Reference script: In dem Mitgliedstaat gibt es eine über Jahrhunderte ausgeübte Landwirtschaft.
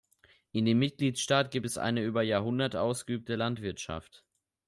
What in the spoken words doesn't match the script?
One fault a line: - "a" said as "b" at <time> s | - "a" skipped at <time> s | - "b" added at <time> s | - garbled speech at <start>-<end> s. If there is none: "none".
none